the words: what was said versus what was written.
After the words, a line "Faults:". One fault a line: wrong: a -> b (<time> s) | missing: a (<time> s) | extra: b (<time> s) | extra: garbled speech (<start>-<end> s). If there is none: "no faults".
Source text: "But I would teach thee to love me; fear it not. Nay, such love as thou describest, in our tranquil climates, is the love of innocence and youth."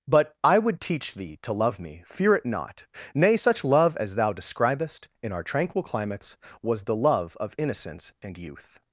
"But I would teach thee to love me; fear it not. Nay, such love as thou describest, in our tranquil climates, was the love of innocence and youth."
Faults:
wrong: is -> was (6.6 s)